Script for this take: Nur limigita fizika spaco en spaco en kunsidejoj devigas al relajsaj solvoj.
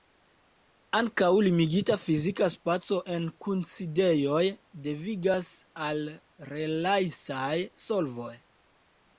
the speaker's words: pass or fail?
fail